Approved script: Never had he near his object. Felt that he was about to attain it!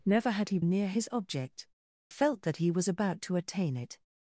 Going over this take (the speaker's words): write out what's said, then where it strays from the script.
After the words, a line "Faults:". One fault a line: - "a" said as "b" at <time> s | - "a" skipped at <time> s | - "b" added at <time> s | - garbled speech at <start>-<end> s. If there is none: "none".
Never had he near his object. Felt that he was about to attain it!
Faults:
none